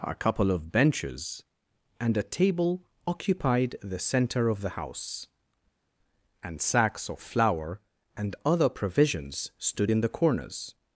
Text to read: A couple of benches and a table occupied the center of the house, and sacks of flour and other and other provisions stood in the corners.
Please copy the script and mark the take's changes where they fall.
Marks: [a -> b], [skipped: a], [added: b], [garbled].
A couple of benches and a table occupied the center of the house, and sacks of flour and other [skipped: and other] provisions stood in the corners.